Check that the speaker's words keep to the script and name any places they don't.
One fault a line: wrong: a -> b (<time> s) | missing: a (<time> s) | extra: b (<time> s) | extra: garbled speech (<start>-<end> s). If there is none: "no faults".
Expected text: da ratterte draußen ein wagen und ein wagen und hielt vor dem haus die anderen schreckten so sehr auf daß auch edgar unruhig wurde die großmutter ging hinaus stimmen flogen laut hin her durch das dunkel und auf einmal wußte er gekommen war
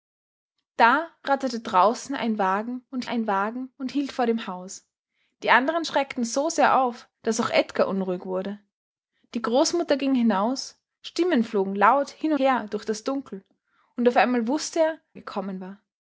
no faults